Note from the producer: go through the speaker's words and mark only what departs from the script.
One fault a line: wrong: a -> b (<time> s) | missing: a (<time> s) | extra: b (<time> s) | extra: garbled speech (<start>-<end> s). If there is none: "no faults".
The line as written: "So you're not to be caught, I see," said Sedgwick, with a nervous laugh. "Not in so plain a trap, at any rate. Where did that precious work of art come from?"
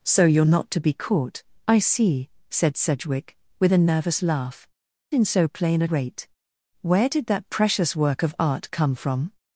missing: Not (4.7 s)
missing: trap at any (5.9 s)